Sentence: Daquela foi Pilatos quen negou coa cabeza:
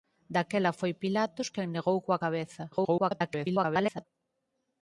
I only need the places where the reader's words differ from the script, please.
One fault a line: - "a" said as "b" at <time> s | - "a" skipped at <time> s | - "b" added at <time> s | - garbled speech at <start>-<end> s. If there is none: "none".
- garbled speech at 2.7-4.1 s